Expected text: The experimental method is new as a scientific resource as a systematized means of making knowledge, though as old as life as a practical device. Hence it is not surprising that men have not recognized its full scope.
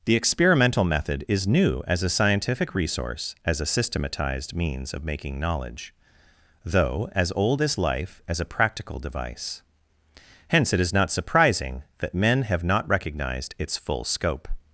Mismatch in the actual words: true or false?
false